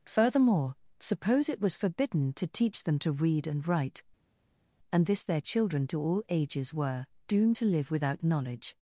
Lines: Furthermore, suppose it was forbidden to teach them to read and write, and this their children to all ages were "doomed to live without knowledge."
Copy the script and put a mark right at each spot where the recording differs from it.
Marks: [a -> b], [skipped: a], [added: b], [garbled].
Furthermore, suppose it was forbidden to teach them to read and write, and this their children to all ages were "doomed to live without knowledge."